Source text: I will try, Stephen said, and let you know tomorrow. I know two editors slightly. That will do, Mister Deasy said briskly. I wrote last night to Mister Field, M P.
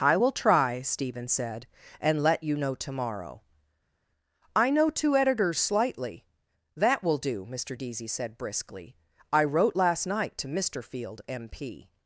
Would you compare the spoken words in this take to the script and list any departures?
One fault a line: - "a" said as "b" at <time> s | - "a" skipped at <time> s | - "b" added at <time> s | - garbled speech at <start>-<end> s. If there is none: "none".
none